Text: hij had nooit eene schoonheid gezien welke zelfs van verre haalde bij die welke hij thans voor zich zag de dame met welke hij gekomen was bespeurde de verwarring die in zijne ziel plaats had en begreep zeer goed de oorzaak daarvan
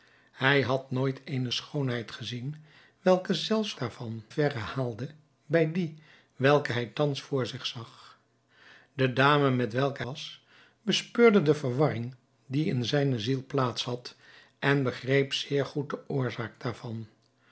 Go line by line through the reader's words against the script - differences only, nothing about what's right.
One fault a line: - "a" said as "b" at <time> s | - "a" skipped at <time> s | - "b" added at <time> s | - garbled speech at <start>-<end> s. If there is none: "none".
- "van" said as "daarvan" at 3.8 s
- "hij gekomen" skipped at 10.0 s